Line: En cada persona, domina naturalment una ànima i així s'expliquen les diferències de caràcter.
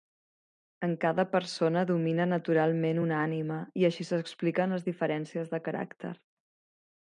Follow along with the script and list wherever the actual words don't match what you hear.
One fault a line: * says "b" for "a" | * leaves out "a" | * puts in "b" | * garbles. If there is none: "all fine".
all fine